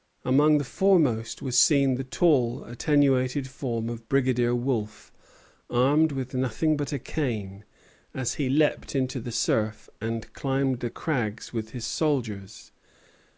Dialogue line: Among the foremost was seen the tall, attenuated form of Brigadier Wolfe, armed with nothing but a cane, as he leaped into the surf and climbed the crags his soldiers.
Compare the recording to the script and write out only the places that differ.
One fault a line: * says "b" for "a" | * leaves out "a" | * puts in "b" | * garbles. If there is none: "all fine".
* puts in "with"